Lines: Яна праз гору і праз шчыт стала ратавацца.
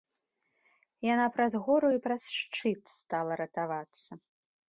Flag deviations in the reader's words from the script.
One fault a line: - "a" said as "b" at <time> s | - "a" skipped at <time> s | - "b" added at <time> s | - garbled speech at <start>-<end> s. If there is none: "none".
none